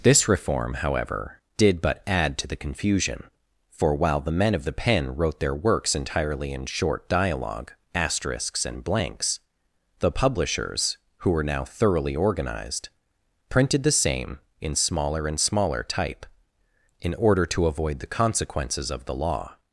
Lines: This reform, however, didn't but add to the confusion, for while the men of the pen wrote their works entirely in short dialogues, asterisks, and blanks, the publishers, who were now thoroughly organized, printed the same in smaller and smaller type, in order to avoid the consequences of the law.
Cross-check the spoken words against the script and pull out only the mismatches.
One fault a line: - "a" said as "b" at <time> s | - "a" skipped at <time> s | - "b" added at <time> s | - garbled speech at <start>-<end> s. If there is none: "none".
- "didn't" said as "did" at 1.6 s
- "dialogues" said as "dialogue" at 7.1 s